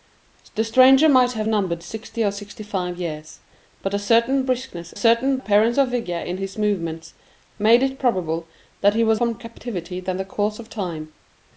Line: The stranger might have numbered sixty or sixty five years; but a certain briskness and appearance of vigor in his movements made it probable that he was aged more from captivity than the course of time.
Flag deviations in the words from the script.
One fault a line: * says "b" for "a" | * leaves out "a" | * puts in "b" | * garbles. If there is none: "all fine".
* says "certain" for "and"
* leaves out "aged more"